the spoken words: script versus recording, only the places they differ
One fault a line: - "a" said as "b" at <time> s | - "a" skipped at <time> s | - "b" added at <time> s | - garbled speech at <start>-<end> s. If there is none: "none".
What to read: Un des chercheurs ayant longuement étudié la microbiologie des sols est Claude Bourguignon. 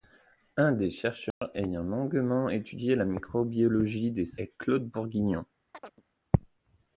- "sols" skipped at 4.3 s